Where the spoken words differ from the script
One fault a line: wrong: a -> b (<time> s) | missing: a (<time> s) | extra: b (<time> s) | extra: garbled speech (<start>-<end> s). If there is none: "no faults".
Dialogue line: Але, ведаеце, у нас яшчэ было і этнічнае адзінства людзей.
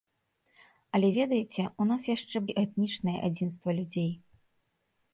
missing: было (2.4 s)